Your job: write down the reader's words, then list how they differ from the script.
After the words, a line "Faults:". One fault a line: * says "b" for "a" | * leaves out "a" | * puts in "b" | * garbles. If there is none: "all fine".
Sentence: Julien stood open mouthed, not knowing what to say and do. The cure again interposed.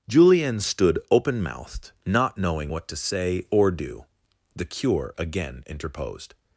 Julien stood open mouthed, not knowing what to say or do. The cure again interposed.
Faults:
* says "or" for "and"